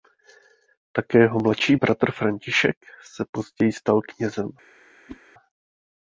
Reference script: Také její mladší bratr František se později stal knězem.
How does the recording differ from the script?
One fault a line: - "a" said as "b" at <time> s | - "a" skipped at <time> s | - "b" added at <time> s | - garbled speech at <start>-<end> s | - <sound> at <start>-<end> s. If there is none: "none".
- "její" said as "jeho" at 1.2 s
- whoosh at 5.1-5.2 s